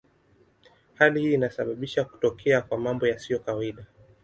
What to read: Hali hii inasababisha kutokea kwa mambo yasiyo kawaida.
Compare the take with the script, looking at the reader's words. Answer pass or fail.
pass